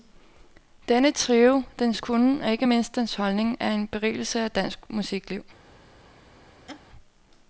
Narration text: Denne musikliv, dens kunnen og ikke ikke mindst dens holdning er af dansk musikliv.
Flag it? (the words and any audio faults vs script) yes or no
yes